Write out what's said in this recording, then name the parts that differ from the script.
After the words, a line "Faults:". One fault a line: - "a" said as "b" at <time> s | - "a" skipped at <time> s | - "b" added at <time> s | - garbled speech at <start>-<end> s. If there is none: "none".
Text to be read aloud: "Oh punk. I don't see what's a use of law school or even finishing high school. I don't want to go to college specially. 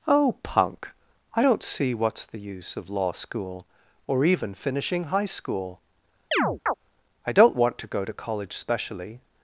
"Oh punk. I don't see what's the use of law school or even finishing high school. I don't want to go to college specially.
Faults:
- "a" said as "the" at 2.2 s